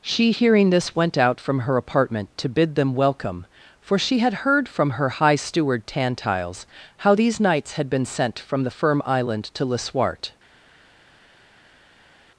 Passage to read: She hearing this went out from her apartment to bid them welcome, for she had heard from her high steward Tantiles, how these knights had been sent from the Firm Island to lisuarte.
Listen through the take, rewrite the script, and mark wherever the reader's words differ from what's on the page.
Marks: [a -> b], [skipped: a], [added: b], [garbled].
She hearing this went out from her apartment to bid them welcome, for she had heard from her high steward Tantiles, how these knights had been sent from the Firm Island to lisuarte.